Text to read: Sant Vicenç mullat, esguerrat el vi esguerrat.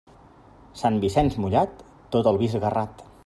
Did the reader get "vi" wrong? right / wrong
right